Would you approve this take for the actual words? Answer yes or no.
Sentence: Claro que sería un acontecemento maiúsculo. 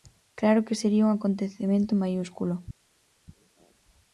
yes